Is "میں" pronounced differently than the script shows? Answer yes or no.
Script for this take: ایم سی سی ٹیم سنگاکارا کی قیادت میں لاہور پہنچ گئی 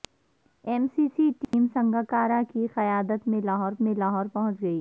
no